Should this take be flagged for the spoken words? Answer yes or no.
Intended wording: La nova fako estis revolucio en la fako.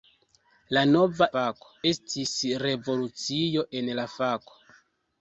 no